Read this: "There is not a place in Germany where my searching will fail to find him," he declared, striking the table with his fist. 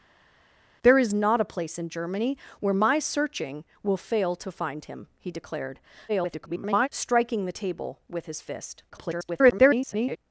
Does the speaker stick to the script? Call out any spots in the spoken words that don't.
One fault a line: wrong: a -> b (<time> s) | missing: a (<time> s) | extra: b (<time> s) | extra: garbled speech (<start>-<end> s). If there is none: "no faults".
extra: garbled speech (6.1-6.9 s)
extra: garbled speech (8.9-10.2 s)